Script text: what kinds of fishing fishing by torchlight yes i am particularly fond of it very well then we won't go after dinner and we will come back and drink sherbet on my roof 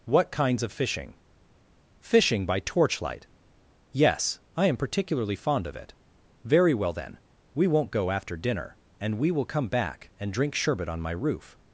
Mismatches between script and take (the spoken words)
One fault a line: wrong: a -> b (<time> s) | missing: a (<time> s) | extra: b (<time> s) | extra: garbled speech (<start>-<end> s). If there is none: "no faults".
no faults